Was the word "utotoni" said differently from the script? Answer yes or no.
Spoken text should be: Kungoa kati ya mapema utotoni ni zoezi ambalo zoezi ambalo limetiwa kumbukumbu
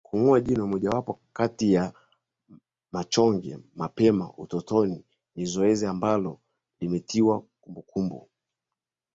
no